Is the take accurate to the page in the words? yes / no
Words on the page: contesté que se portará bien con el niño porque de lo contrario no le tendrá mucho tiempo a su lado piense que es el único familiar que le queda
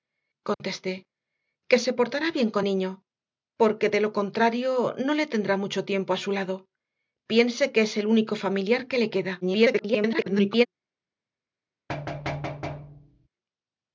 no